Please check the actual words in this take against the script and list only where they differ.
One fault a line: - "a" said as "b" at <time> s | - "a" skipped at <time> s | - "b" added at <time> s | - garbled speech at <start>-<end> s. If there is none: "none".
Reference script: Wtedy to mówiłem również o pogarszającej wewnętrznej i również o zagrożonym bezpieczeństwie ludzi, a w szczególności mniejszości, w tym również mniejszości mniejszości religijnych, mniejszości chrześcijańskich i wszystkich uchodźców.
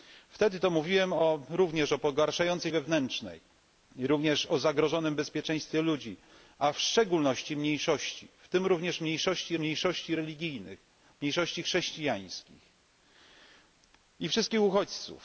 none